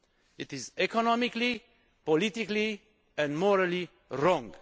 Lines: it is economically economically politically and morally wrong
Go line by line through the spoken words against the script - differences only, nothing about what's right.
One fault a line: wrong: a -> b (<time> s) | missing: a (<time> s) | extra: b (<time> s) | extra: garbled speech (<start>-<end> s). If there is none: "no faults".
missing: economically (1.6 s)